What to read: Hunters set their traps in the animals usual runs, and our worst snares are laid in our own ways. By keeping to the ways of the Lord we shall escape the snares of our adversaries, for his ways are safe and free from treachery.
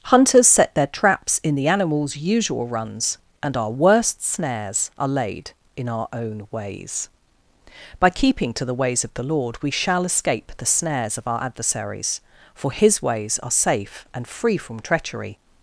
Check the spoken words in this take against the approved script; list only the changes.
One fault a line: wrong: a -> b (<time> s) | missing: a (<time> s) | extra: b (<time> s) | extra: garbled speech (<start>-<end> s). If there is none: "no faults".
no faults